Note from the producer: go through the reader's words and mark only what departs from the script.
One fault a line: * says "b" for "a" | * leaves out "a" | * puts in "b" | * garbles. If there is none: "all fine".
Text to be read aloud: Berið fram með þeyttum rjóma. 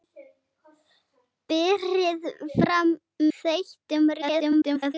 * leaves out "með"
* garbles